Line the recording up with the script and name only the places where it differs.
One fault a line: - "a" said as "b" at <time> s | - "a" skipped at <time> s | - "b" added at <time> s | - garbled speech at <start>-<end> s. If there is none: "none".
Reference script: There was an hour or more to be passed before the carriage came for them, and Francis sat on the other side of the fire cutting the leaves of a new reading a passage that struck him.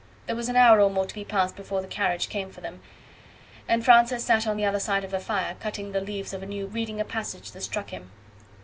none